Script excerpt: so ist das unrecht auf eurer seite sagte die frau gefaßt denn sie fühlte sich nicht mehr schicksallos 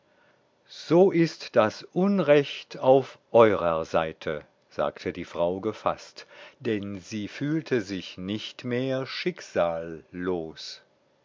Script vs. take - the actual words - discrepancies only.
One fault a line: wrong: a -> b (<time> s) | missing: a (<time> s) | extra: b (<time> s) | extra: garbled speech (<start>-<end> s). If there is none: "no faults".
no faults